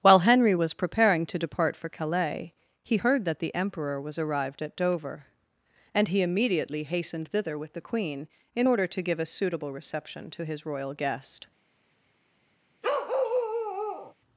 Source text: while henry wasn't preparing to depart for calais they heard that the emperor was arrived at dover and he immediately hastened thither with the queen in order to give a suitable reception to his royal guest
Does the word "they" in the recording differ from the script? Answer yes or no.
yes